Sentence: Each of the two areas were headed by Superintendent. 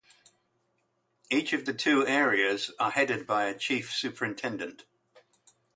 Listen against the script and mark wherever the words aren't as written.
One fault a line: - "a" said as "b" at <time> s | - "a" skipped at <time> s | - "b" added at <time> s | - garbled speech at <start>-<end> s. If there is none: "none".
- "were" said as "are" at 2.8 s
- "a Chief" added at 3.4 s